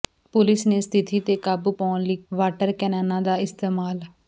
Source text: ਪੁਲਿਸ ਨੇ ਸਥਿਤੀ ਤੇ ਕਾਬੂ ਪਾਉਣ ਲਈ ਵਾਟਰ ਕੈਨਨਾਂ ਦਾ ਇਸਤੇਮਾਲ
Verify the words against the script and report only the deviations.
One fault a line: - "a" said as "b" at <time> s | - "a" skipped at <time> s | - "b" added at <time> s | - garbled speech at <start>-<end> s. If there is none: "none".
none